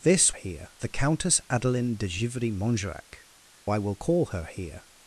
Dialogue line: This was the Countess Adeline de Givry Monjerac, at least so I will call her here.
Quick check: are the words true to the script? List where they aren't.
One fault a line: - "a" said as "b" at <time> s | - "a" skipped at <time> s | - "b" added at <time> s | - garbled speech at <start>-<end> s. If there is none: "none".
- "was" said as "here" at 0.3 s
- "at least so" skipped at 3.2 s